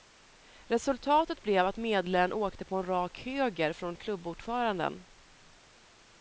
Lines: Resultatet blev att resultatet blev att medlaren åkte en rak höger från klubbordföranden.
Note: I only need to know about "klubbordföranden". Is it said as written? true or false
true